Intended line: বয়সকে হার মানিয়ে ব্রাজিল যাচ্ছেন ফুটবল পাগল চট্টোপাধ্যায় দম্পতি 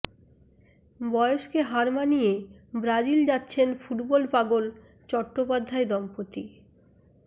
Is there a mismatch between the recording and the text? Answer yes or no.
no